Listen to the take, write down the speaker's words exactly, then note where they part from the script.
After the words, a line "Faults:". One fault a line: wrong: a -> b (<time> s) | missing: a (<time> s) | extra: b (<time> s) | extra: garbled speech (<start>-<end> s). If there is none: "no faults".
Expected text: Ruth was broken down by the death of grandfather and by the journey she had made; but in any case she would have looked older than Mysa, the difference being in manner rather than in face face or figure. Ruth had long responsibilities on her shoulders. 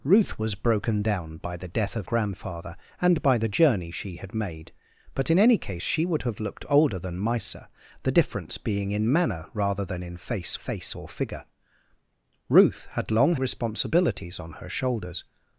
Ruth was broken down by the death of grandfather and by the journey she had made; but in any case she would have looked older than Mysa, the difference being in manner rather than in face face or figure. Ruth had long responsibilities on her shoulders.
Faults:
no faults